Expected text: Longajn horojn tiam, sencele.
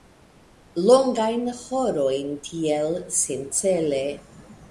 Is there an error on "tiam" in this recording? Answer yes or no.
yes